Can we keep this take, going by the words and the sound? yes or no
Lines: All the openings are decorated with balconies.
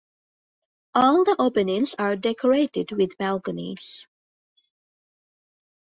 yes